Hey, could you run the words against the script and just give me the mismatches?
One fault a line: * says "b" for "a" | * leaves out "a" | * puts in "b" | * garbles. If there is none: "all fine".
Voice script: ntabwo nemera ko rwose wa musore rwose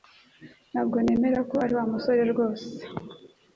* says "ari" for "rwose"